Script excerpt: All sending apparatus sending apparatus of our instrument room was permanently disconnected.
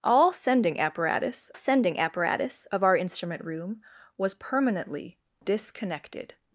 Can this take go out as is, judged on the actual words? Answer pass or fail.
pass